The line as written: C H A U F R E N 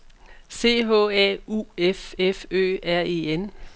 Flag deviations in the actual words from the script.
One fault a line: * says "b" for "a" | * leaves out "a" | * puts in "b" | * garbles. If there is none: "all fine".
* puts in "F Ø"